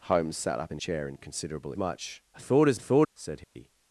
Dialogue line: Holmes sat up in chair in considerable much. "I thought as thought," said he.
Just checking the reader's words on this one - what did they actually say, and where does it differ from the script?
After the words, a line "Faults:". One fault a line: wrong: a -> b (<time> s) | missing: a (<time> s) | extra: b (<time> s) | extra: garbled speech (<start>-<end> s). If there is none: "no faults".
Holmes sat up in chair in considerable much. "I thought as thought," said he.
Faults:
no faults